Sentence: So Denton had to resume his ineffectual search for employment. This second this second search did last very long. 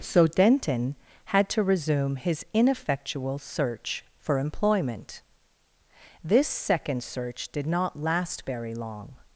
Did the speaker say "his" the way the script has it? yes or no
yes